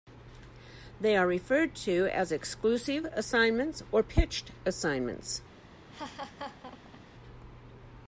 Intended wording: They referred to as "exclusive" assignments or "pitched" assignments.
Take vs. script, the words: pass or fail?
fail